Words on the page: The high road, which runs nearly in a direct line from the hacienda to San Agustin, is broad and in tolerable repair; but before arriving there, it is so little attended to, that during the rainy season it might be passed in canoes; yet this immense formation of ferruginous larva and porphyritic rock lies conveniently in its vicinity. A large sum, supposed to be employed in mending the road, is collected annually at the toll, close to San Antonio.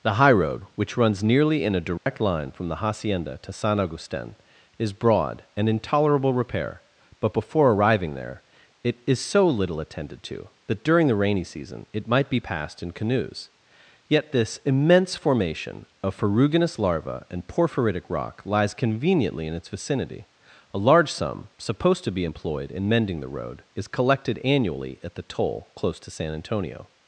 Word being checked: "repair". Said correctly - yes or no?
yes